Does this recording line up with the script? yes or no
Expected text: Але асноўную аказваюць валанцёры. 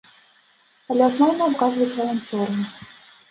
yes